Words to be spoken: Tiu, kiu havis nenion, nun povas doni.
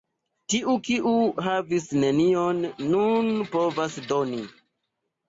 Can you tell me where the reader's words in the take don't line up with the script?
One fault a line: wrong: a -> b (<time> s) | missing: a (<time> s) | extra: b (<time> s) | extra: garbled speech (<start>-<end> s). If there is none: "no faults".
no faults